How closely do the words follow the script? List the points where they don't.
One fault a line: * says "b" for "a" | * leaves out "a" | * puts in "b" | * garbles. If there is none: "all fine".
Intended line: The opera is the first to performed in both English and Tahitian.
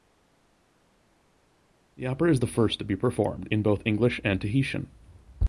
* puts in "be"